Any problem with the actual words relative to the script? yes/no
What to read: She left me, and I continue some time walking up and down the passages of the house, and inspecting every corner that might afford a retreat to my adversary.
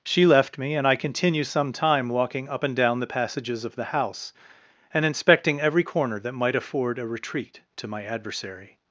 no